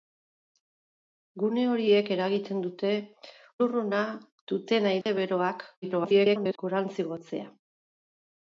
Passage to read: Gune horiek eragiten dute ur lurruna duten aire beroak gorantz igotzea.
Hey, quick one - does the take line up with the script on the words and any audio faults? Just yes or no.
no